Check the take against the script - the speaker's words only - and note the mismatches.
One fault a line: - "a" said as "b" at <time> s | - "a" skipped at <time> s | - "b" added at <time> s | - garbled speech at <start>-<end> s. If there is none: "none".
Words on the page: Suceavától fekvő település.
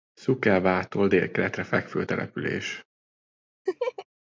- "délkeletre" added at 1.1 s